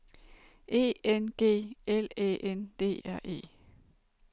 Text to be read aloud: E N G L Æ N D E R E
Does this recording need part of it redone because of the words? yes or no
yes